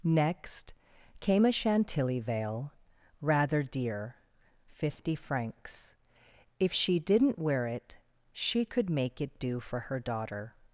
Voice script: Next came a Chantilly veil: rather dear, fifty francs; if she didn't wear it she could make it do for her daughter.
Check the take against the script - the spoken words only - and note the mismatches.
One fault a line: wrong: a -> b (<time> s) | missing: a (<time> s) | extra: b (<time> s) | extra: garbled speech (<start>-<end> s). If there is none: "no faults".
no faults